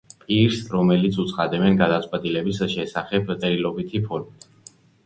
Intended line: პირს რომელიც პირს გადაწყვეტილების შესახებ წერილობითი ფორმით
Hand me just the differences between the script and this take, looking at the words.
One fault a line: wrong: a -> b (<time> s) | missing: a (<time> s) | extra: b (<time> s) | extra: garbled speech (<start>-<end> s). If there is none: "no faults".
wrong: პირს -> უცხადებენ (1.2 s)